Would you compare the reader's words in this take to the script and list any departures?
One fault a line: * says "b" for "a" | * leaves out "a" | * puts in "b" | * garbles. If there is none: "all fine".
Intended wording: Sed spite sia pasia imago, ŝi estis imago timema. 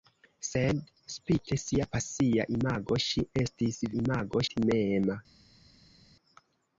all fine